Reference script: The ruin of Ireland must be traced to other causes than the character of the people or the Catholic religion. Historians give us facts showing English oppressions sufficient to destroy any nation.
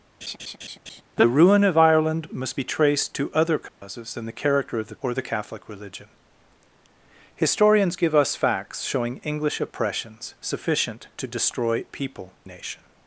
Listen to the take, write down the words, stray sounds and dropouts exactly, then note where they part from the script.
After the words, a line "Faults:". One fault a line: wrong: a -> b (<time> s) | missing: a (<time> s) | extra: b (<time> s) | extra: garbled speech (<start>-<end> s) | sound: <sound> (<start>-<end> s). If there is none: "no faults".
The ruin of Ireland must be traced to other causes than the character of the or the Catholic religion. Historians give us facts showing English oppressions sufficient to destroy people nation.
Faults:
sound: laugh (0.2-1.0 s)
sound: dropout (3.7-3.8 s)
missing: people (4.9 s)
wrong: any -> people (11.9 s)